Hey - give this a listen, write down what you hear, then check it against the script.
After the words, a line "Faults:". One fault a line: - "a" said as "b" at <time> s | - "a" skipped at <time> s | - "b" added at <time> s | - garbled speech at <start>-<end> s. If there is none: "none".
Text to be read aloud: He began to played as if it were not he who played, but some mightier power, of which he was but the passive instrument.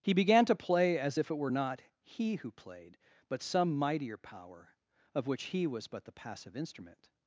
He began to play as if it were not he who played, but some mightier power, of which he was but the passive instrument.
Faults:
- "played" said as "play" at 0.6 s